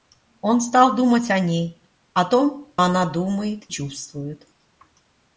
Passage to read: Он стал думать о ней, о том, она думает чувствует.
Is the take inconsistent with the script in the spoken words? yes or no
no